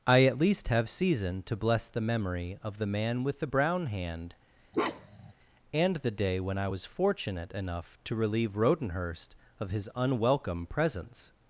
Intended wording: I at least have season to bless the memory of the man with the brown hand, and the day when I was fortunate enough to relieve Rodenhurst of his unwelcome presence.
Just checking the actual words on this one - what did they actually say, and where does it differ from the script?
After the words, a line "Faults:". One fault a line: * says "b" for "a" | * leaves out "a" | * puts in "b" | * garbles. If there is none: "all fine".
I at least have season to bless the memory of the man with the brown hand, and the day when I was fortunate enough to relieve Rodenhurst of his unwelcome presence.
Faults:
all fine